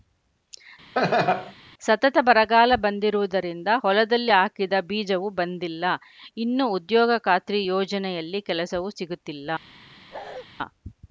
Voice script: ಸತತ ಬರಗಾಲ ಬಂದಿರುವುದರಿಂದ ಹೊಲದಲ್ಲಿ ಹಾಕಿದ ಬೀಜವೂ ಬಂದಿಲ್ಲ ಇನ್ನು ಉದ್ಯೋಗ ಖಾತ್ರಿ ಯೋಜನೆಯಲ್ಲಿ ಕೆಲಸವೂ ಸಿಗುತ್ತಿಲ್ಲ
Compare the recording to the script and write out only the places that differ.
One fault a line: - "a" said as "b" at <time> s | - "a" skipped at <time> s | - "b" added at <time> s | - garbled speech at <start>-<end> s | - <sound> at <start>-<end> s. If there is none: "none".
- laugh at 0.9-1.5 s
- bark at 10.1-10.5 s